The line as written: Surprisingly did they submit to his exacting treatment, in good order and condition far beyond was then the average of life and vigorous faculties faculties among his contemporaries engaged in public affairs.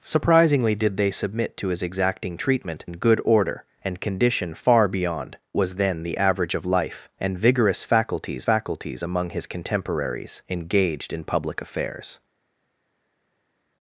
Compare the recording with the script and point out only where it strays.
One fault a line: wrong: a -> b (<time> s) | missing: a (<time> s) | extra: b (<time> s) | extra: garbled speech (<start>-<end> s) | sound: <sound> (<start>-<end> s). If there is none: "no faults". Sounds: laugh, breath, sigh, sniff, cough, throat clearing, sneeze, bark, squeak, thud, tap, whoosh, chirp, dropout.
no faults